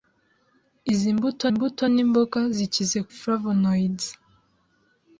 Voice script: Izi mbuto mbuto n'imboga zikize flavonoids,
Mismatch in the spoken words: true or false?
false